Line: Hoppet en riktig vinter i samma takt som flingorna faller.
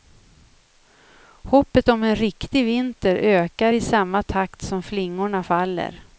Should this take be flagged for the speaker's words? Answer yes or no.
yes